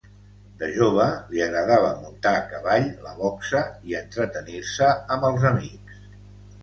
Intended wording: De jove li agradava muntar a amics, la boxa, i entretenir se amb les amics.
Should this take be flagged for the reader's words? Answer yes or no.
yes